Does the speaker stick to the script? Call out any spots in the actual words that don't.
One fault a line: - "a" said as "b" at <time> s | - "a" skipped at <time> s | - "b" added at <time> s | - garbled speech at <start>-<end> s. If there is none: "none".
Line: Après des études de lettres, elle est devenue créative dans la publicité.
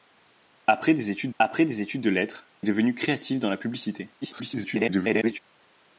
- "après des études" added at 1.4 s
- "elle" skipped at 2.4 s
- garbled speech at 4.2-5.4 s